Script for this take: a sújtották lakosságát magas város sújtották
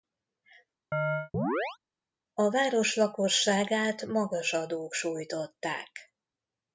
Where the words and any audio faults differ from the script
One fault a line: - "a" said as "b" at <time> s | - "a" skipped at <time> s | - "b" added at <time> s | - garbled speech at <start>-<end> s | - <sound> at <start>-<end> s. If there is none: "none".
- chirp at 0.9-1.8 s
- "sújtották" said as "város" at 2.5 s
- "város" said as "adók" at 4.5 s